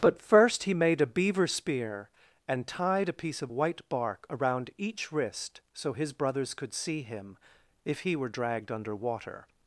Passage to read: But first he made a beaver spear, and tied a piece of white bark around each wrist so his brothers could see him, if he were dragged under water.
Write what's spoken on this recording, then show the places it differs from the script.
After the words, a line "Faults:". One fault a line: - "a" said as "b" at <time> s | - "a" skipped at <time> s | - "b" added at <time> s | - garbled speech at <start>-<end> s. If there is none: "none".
But first he made a beaver spear, and tied a piece of white bark around each wrist so his brothers could see him, if he were dragged under water.
Faults:
none